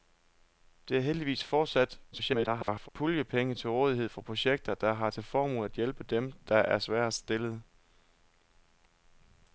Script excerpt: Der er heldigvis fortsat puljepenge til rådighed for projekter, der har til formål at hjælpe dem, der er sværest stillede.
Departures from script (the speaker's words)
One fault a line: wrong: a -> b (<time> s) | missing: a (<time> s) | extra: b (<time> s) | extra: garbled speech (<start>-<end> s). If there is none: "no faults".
extra: garbled speech (2.1-2.9 s)